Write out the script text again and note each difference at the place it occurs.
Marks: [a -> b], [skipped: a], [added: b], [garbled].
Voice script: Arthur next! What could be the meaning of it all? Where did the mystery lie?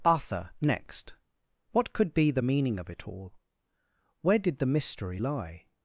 Arthur next! What could be the meaning of it all? Where did the mystery lie?